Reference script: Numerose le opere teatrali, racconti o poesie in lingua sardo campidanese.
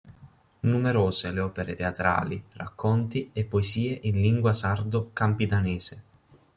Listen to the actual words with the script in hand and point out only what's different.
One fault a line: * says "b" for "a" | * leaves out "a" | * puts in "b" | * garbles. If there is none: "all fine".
* says "e" for "o"